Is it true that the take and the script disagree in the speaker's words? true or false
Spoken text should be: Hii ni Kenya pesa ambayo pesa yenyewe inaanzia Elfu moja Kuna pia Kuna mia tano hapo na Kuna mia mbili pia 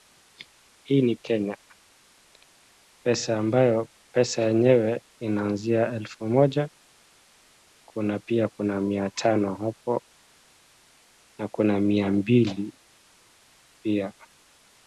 false